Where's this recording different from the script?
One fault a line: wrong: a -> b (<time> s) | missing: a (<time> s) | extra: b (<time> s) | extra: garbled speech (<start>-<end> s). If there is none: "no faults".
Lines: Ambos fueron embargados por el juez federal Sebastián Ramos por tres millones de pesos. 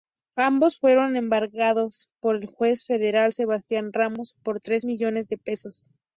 no faults